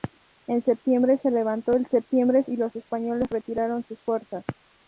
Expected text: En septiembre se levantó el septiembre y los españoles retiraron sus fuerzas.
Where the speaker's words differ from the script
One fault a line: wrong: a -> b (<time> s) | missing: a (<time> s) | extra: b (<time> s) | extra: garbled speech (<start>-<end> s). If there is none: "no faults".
no faults